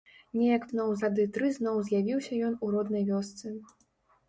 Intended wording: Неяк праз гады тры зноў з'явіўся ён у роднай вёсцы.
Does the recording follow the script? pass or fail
fail